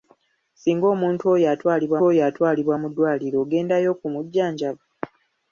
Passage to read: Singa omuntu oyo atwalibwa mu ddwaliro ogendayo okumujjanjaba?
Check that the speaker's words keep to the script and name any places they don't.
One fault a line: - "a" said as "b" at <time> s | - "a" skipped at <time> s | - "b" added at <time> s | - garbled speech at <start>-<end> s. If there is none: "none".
- "oyo atwalibwa" added at 2.1 s